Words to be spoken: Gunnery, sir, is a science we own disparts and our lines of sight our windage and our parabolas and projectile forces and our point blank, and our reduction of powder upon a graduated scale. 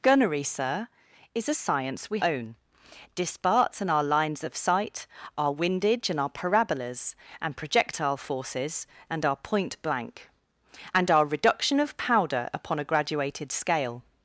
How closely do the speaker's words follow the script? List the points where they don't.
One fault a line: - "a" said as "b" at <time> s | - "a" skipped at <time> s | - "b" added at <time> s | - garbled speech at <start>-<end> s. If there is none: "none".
none